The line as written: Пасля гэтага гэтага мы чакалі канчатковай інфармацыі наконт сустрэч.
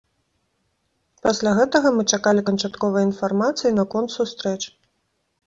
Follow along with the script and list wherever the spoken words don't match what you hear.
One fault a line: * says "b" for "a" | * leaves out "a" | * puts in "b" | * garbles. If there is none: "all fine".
* leaves out "гэтага"